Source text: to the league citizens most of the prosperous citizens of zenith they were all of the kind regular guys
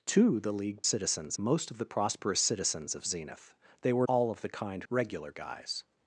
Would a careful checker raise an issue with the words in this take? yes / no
no